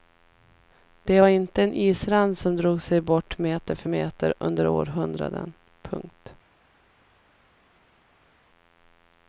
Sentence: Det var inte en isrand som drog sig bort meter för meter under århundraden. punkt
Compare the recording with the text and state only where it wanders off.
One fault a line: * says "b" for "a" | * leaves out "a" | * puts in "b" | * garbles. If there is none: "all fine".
all fine